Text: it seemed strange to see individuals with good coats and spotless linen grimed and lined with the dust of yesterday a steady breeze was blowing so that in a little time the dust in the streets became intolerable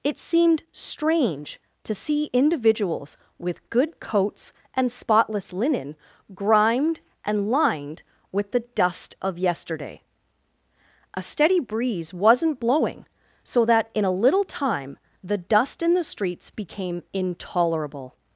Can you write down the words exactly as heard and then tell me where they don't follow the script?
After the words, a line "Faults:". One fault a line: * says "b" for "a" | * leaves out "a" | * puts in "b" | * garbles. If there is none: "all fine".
it seemed strange to see individuals with good coats and spotless linen grimed and lined with the dust of yesterday a steady breeze wasn't blowing so that in a little time the dust in the streets became intolerable
Faults:
* says "wasn't" for "was"